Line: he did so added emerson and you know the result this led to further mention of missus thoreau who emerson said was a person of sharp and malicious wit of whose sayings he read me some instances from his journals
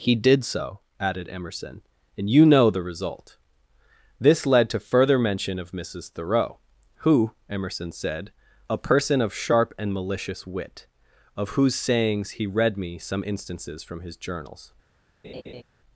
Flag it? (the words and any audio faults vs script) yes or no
yes